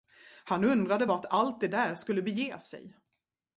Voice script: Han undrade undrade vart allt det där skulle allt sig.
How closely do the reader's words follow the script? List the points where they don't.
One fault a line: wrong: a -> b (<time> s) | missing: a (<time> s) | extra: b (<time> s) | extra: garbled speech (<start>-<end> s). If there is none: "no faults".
missing: undrade (1.1 s)
wrong: allt -> bege (2.2 s)